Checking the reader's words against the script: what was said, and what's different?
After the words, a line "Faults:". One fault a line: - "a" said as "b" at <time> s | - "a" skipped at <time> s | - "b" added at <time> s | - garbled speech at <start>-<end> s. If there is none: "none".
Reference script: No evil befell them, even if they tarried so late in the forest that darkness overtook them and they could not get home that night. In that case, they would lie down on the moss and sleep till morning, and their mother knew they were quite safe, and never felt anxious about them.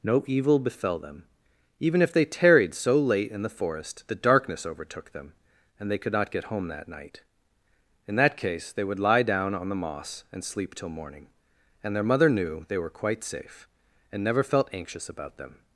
No evil befell them, even if they tarried so late in the forest the darkness overtook them and they could not get home that night. In that case, they would lie down on the moss and sleep till morning, and their mother knew they were quite safe, and never felt anxious about them.
Faults:
- "that" said as "the" at 4.1 s